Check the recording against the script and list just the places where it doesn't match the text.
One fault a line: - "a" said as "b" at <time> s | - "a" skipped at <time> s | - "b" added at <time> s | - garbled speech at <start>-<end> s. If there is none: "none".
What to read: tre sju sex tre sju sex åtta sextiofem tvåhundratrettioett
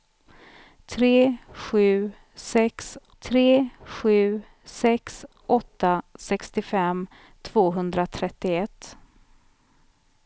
none